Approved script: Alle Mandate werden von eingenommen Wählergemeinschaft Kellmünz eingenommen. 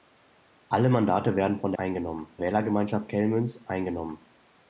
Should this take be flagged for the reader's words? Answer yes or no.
no